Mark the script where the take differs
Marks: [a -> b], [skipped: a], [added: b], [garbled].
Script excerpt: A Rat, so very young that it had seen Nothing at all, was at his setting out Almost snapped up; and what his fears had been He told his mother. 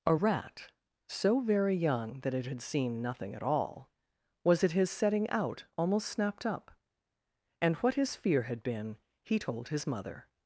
A Rat, so very young that it had seen Nothing at all, was at his setting out Almost snapped up; and what his [fears -> fear] had been He told his mother.